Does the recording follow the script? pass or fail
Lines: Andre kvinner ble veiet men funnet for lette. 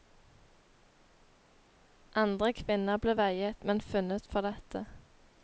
pass